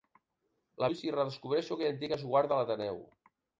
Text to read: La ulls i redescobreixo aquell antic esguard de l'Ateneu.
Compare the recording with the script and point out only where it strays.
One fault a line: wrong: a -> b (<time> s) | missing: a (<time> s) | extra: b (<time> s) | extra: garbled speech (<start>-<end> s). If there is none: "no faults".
no faults